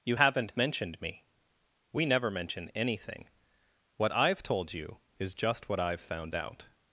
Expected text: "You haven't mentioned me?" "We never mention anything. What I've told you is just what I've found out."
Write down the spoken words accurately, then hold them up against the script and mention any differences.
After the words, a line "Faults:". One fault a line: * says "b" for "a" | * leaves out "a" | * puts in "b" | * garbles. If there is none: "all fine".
"You haven't mentioned me?" "We never mention anything. What I've told you is just what I've found out."
Faults:
all fine